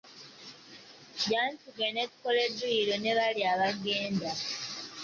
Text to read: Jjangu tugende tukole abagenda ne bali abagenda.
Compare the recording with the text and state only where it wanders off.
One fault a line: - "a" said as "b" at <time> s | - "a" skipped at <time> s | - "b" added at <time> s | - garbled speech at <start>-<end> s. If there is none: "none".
- "abagenda" said as "dduyiro" at 2.5 s